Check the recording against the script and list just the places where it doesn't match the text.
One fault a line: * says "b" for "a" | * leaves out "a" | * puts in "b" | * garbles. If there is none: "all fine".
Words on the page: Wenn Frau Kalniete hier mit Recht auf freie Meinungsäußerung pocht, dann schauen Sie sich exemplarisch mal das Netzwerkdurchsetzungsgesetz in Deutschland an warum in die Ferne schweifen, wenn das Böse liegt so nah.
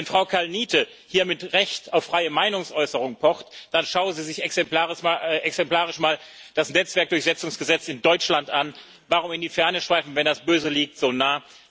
all fine